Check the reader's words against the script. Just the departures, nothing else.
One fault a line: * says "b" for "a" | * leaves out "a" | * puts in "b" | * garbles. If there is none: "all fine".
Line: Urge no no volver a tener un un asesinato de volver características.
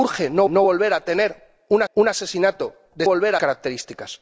all fine